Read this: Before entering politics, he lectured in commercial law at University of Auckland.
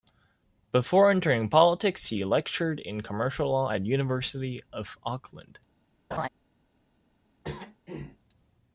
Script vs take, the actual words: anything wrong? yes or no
no